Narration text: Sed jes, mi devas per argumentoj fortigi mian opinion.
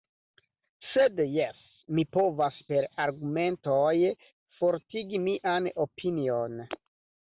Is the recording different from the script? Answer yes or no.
yes